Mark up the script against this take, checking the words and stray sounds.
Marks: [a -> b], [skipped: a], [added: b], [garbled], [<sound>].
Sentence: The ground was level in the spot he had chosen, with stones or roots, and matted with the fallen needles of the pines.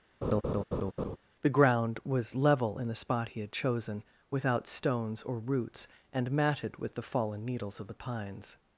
[laugh] The ground was level in the spot he had chosen, [with -> without] stones or roots, and matted with the fallen needles of the pines.